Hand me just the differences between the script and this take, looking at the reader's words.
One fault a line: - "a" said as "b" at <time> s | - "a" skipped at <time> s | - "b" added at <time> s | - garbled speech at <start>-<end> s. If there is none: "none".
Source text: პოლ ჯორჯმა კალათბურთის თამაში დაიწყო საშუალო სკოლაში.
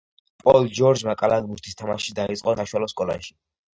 none